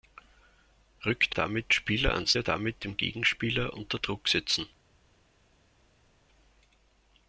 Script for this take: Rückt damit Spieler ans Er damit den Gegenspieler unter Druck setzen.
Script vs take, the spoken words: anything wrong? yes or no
no